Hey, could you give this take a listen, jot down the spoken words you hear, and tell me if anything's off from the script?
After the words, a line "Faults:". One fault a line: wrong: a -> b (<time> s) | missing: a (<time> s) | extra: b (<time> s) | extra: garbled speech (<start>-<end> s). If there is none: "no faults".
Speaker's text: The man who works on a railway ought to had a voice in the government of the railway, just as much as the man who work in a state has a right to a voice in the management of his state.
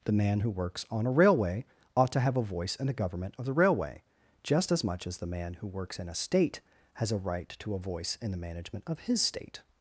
The man who works on a railway ought to have a voice in the government of the railway, just as much as the man who works in a state has a right to a voice in the management of his state.
Faults:
wrong: had -> have (2.2 s)
wrong: work -> works (5.7 s)